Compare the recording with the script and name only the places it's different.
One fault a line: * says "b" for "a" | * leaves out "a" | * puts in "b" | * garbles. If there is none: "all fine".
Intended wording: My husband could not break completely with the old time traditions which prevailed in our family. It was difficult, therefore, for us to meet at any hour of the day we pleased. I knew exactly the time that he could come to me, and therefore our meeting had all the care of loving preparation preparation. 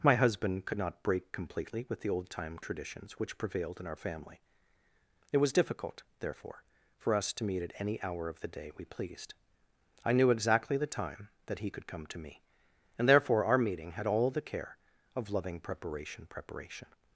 all fine